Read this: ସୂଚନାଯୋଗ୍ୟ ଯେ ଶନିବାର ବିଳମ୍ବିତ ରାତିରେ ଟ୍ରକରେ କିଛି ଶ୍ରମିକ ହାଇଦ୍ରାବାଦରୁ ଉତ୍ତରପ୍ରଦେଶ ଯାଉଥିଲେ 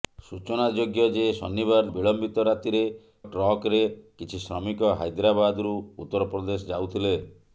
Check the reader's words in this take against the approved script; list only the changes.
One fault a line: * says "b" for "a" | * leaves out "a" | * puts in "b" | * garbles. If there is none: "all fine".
all fine